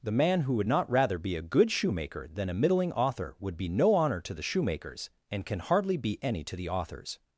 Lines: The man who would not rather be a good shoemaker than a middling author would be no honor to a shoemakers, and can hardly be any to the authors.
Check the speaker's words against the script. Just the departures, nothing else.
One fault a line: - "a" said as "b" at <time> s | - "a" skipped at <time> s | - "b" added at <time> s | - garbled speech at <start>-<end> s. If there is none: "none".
- "a" said as "the" at 4.3 s